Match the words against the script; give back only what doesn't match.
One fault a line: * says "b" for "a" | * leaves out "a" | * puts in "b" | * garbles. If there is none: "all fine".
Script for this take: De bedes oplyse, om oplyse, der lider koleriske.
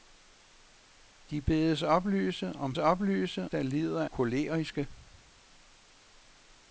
all fine